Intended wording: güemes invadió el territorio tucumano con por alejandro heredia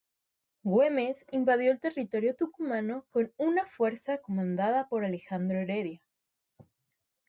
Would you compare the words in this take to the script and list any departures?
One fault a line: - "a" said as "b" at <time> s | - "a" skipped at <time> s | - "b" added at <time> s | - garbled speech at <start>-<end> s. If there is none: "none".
- "una fuerza comandada" added at 3.3 s